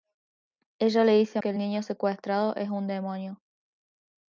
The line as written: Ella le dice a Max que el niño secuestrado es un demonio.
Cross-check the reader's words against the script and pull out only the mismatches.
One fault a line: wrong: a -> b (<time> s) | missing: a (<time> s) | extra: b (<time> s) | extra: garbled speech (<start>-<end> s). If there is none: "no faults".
missing: Max (1.4 s)